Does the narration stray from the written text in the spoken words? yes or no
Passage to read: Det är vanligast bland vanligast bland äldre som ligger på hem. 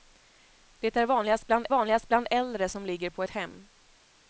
no